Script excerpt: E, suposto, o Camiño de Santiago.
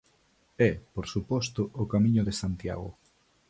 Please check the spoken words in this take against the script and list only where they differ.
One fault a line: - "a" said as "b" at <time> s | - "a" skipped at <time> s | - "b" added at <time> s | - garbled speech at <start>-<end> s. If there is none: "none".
- "por" added at 0.9 s